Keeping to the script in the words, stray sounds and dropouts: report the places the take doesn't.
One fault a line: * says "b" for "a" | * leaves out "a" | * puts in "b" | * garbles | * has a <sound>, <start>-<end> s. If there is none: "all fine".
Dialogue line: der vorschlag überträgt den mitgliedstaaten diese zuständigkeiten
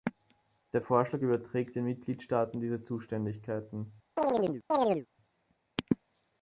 * has a chirp, 4.2-5.1 s